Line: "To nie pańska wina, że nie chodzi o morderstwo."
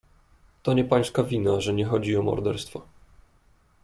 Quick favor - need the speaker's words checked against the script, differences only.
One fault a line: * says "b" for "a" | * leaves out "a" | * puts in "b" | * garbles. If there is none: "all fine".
all fine